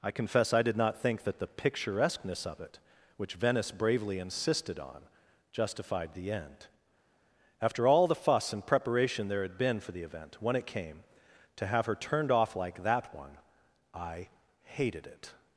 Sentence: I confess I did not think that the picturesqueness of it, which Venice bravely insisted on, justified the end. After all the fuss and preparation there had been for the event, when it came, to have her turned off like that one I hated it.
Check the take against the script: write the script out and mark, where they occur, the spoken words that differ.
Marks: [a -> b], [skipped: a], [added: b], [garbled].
I confess I did not think that the picturesqueness of it, which Venice bravely insisted on, justified the end. After all the fuss and preparation there had been for the event, when it came, to have her turned off like that one I hated it.